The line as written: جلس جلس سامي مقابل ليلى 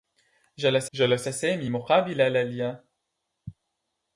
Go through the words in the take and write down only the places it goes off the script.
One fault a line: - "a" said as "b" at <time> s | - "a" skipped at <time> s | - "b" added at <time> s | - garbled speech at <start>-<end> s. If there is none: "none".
none